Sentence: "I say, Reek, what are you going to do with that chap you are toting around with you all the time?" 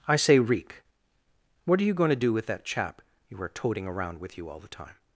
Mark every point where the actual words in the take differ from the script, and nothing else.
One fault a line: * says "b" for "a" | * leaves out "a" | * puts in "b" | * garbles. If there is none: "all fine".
all fine